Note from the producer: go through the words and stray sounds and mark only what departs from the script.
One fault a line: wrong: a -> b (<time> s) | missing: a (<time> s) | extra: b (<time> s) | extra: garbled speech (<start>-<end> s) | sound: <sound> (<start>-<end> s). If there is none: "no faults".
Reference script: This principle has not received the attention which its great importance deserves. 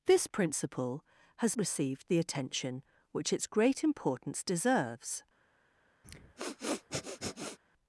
missing: not (1.6 s)
sound: sniff (6.0-7.6 s)